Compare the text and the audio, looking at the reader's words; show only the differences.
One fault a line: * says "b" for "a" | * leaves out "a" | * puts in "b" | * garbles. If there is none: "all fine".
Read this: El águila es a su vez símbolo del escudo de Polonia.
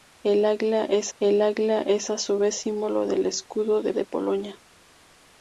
* puts in "el águila es"
* puts in "de"